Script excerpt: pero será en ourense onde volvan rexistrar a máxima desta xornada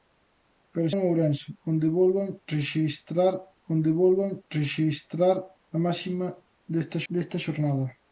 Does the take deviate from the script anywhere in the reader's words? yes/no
yes